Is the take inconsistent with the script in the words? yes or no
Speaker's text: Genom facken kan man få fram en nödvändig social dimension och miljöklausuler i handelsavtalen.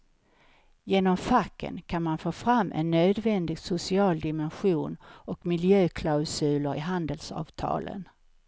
no